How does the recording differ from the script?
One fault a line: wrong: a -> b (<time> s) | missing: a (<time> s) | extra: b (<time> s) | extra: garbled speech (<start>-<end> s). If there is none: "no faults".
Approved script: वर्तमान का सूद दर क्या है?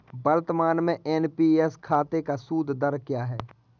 extra: में एन.पी.एस खाते (0.8 s)